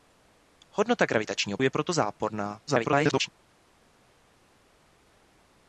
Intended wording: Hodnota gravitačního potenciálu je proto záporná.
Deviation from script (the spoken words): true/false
true